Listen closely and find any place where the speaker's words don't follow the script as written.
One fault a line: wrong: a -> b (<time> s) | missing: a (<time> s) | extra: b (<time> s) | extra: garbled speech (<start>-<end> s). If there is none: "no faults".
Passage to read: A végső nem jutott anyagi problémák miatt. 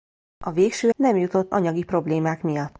no faults